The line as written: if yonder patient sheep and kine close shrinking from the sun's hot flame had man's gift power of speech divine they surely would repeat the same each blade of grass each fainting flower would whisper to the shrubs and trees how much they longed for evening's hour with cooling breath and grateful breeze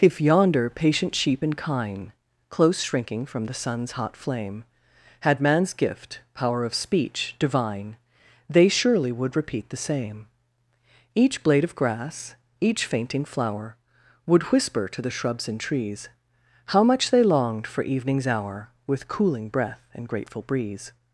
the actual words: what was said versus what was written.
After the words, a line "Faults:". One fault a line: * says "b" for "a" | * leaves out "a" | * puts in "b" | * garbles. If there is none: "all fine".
if yonder patient sheep and kine close shrinking from the sun's hot flame had man's gift power of speech divine they surely would repeat the same each blade of grass each fainting flower would whisper to the shrubs and trees how much they longed for evening's hour with cooling breath and grateful breeze
Faults:
all fine